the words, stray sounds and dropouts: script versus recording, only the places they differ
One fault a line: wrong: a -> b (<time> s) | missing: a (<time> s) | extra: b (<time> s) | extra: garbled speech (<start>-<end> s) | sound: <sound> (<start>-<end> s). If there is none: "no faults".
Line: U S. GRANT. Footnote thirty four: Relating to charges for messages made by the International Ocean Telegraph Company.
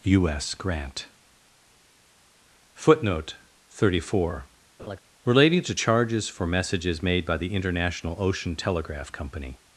sound: laugh (4.8-5.0 s)